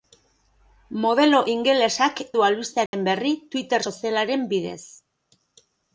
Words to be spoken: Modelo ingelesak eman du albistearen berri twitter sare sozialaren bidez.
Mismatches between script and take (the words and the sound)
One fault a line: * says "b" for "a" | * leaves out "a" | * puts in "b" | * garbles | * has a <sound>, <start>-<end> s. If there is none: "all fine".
* leaves out "eman"
* has a dropout, 2.9-2.9 s
* leaves out "sare"